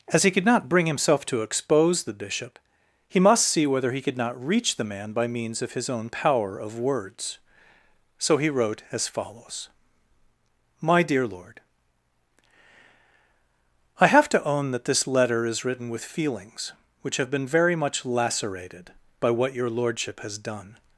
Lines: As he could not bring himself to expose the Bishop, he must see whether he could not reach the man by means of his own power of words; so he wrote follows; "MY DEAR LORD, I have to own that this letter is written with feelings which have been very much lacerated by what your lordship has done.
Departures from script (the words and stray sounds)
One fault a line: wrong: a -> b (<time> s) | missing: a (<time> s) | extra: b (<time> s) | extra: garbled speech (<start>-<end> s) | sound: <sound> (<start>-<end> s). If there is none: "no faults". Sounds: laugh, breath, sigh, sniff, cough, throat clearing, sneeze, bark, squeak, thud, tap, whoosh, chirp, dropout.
extra: as (8.9 s)